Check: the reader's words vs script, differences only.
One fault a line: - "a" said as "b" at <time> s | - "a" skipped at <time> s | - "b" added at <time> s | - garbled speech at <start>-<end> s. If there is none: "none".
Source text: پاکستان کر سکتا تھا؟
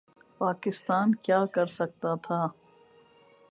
- "کیا" added at 1.2 s